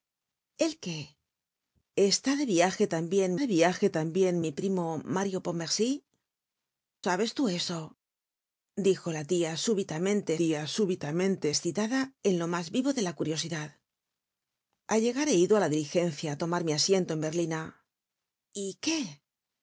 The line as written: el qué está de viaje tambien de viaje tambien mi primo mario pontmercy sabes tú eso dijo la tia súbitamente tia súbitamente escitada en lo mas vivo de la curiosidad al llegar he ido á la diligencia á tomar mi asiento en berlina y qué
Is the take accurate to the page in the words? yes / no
yes